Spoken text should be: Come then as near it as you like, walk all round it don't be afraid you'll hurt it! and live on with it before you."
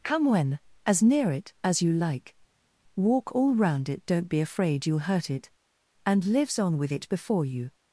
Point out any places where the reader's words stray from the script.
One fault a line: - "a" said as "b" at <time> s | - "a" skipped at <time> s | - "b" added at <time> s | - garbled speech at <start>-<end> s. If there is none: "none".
- "then" said as "when" at 0.2 s
- "live" said as "lives" at 6.3 s